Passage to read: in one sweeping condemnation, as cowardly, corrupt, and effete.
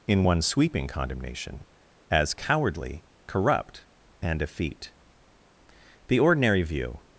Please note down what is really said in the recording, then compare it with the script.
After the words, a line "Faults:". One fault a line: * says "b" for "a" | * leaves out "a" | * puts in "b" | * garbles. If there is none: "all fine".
in one sweeping condemnation, as cowardly, corrupt, and effete. The ordinary view
Faults:
* puts in "The ordinary view"